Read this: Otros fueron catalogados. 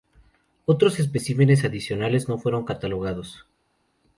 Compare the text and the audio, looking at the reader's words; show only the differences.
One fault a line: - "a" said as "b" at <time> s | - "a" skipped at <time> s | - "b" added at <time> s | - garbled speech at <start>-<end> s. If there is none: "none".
- "especímenes adicionales no" added at 1.0 s